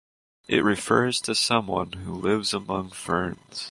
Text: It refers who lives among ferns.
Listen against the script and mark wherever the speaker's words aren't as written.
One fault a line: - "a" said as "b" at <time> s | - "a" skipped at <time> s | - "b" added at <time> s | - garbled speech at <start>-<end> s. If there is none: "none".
- "to someone" added at 1.2 s